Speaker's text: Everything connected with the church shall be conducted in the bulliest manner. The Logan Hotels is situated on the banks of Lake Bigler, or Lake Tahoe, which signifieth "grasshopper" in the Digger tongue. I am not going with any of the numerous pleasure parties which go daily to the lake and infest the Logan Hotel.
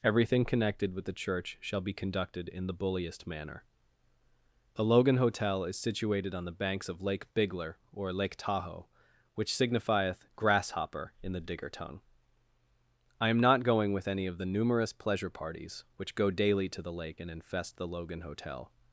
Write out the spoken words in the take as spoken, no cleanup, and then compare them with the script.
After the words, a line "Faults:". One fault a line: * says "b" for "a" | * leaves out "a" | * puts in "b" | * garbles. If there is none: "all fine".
Everything connected with the church shall be conducted in the bulliest manner. The Logan Hotel is situated on the banks of Lake Bigler, or Lake Tahoe, which signifieth "grasshopper" in the Digger tongue. I am not going with any of the numerous pleasure parties which go daily to the lake and infest the Logan Hotel.
Faults:
* says "Hotel" for "Hotels"